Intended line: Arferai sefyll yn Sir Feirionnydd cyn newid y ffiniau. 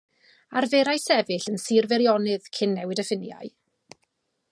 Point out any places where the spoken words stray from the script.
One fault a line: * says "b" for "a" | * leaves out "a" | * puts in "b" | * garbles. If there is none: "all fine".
all fine